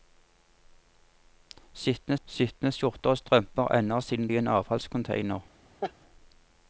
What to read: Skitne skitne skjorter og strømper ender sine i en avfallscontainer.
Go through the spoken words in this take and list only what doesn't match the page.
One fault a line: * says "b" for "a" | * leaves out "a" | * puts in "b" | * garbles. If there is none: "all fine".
all fine